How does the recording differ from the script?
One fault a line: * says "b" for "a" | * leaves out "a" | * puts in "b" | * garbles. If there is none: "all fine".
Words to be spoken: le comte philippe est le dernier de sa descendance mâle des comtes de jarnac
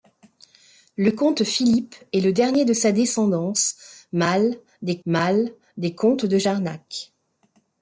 * puts in "mâle des"